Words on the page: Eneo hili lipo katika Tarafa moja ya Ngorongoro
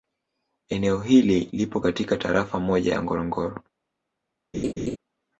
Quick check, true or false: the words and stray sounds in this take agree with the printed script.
false